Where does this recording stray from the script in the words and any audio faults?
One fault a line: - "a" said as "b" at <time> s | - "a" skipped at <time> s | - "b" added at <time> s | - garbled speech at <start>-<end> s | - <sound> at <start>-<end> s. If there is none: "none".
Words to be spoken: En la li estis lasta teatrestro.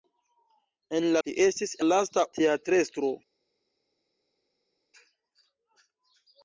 none